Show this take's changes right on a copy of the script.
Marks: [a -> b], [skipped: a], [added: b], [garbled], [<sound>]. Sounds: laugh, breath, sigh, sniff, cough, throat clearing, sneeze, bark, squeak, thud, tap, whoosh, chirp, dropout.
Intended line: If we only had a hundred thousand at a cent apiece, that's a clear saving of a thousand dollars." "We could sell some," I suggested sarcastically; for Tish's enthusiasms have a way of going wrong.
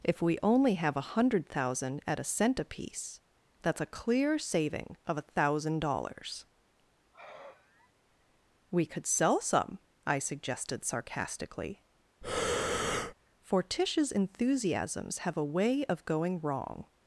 If we only [had -> have] a hundred thousand at a cent apiece, that's a clear saving of a thousand dollars." [sigh] "We could sell some," I suggested sarcastically; [breath] for Tish's enthusiasms have a way of going wrong.